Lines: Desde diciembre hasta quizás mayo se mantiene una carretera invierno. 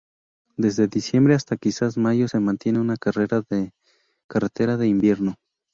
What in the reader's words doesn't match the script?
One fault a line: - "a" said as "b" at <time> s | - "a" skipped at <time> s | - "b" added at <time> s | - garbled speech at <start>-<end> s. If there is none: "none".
- "de" added at 4.8 s